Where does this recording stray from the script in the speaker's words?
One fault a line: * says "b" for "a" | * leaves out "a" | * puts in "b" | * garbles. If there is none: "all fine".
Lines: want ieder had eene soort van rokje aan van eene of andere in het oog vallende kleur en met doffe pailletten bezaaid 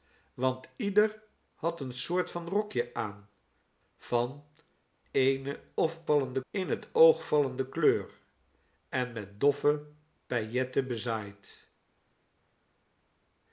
* says "vallende" for "andere"